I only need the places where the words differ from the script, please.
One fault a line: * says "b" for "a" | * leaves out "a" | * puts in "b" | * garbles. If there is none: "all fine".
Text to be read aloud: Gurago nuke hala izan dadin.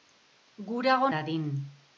* leaves out "nuke hala izan"